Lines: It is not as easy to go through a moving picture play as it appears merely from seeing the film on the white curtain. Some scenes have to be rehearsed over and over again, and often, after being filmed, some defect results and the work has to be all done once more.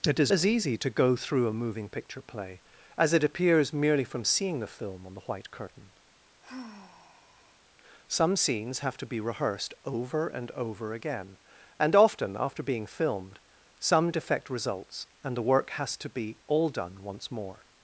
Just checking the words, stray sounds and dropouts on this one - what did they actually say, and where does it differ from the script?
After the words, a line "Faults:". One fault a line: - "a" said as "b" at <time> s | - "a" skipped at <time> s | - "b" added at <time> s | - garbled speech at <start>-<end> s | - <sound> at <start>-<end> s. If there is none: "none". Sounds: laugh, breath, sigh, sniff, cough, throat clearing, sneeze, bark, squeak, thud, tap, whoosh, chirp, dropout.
It is as easy to go through a moving picture play as it appears merely from seeing the film on the white curtain. Some scenes have to be rehearsed over and over again, and often, after being filmed, some defect results and the work has to be all done once more.
Faults:
- "not" skipped at 0.3 s
- sigh at 6.4-7.6 s